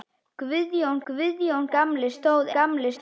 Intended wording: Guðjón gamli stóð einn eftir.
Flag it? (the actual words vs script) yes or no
yes